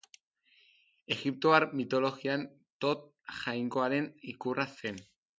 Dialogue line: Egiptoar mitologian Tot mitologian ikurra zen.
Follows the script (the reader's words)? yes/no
no